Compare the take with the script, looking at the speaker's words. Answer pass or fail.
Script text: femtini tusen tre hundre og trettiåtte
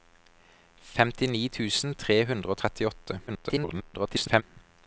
fail